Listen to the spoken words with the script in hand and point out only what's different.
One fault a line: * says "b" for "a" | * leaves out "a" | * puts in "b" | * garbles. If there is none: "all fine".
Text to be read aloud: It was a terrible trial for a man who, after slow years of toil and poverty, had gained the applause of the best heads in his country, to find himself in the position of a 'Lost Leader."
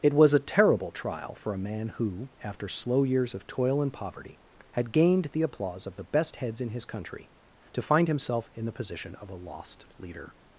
all fine